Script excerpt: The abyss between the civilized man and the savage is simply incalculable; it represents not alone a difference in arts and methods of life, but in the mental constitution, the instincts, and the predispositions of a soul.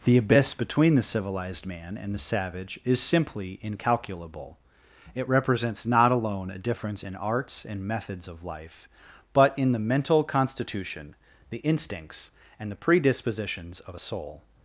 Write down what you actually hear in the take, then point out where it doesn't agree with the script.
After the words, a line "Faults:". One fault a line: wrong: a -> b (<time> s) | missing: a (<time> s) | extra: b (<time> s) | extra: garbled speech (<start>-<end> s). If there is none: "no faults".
The abyss between the civilized man and the savage is simply incalculable; it represents not alone a difference in arts and methods of life, but in the mental constitution, the instincts, and the predispositions of a soul.
Faults:
no faults